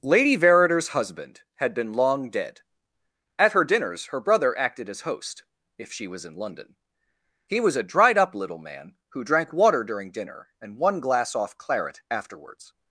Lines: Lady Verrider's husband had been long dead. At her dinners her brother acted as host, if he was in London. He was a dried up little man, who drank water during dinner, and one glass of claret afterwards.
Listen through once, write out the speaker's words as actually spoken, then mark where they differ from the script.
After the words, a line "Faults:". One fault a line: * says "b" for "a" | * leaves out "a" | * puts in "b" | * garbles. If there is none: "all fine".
Lady Verrider's husband had been long dead. At her dinners her brother acted as host, if she was in London. He was a dried up little man, who drank water during dinner, and one glass off claret afterwards.
Faults:
* says "she" for "he"
* says "off" for "of"